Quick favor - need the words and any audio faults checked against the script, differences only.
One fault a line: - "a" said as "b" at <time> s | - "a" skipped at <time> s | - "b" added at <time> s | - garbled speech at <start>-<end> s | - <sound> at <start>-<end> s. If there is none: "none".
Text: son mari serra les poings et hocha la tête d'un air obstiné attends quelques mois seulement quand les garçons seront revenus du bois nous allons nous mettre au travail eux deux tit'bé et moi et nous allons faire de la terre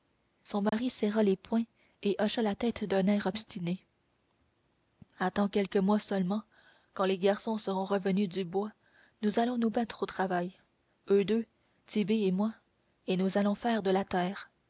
- dropout at 0.7-0.7 s